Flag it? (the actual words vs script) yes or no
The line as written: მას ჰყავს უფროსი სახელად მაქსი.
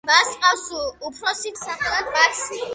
no